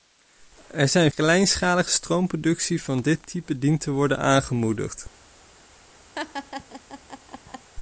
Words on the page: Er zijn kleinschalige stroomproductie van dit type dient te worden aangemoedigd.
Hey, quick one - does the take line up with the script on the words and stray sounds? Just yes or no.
no